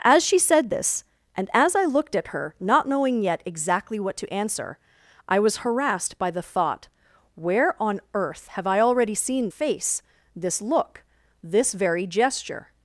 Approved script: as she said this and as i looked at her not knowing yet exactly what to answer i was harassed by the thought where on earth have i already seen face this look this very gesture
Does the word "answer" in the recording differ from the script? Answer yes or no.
no